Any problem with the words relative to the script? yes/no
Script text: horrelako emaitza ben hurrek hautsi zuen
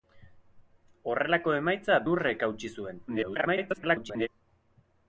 yes